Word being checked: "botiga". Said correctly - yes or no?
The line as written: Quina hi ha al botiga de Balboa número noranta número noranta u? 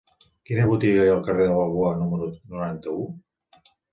no